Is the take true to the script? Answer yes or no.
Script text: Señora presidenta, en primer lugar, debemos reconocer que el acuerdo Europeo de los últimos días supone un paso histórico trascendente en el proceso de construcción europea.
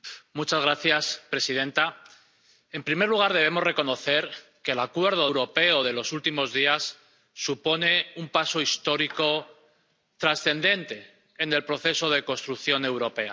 yes